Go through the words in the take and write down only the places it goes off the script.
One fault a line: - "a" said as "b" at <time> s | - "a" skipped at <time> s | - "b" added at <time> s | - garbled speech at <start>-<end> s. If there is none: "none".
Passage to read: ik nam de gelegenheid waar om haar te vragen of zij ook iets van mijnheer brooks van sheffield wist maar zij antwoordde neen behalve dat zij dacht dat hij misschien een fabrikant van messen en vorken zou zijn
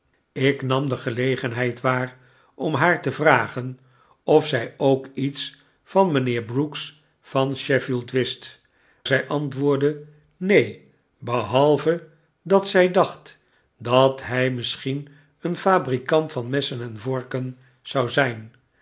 - "maar" skipped at 8.6 s